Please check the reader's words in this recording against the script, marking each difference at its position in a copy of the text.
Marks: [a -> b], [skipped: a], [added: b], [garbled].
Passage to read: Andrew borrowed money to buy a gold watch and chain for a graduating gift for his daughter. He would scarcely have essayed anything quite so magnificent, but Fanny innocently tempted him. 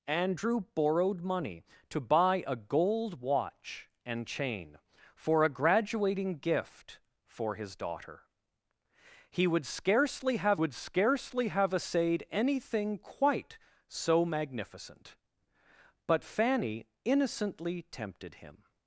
Andrew borrowed money to buy a gold watch and chain for a graduating gift for his daughter. He would scarcely have [added: would scarcely have] essayed anything quite so magnificent, but Fanny innocently tempted him.